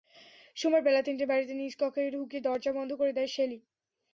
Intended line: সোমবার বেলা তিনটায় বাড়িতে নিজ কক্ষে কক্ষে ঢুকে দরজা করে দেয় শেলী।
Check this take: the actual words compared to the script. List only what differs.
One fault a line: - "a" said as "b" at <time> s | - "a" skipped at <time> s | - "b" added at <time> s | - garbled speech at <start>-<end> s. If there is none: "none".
- "কক্ষে" skipped at 2.1 s
- "বন্ধ" added at 2.8 s